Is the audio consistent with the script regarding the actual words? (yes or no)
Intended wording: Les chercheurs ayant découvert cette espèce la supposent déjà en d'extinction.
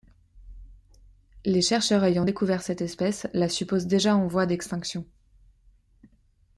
no